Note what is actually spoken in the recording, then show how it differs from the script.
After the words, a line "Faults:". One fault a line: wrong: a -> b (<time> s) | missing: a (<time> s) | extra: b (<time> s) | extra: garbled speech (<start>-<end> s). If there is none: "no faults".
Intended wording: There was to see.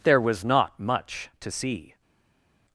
There was not much to see.
Faults:
extra: not much (0.4 s)